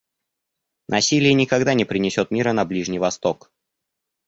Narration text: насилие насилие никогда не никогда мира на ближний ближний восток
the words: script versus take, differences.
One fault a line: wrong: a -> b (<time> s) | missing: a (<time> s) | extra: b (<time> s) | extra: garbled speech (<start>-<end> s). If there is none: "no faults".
missing: насилие (1.3 s)
wrong: никогда -> принесет (1.9 s)
missing: ближний (3.0 s)